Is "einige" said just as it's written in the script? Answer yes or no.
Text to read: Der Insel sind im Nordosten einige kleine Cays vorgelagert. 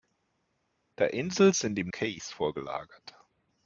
no